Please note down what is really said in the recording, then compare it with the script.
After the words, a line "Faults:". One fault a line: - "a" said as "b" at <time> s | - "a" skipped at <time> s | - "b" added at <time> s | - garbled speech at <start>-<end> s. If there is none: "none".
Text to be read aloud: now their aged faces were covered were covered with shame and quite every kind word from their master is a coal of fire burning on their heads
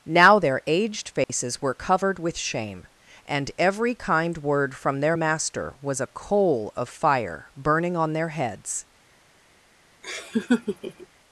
now their aged faces were covered with shame and every kind word from their master was a coal of fire burning on their heads
Faults:
- "were covered" skipped at 2.2 s
- "quite" skipped at 3.5 s
- "is" said as "was" at 5.8 s